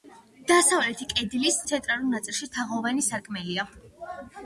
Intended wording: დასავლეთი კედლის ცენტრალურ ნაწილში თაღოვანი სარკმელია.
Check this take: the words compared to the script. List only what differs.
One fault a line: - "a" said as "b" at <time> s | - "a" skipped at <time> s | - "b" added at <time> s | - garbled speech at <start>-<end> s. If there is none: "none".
none